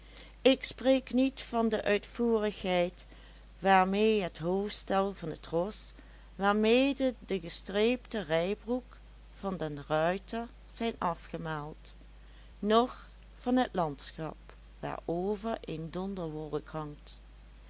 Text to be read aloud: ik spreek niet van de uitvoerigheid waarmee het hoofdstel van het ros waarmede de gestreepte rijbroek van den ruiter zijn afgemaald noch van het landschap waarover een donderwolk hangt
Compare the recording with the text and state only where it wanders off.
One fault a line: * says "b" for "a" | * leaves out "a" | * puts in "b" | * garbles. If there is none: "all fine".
all fine